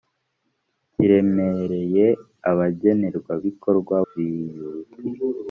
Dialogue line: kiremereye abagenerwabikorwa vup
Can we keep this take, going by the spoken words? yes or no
yes